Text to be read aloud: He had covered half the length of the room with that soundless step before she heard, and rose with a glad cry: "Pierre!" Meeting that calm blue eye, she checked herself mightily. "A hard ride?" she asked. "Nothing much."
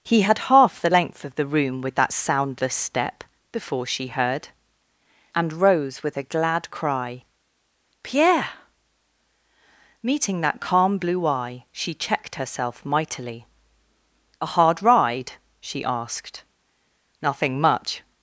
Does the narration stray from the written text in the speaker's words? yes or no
yes